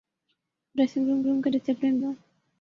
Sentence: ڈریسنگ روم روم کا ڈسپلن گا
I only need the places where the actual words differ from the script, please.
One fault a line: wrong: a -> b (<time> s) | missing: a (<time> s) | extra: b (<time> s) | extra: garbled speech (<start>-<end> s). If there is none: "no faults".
no faults